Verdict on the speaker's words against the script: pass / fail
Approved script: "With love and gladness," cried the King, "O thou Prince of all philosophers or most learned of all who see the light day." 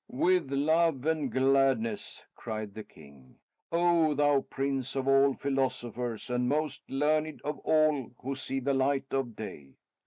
fail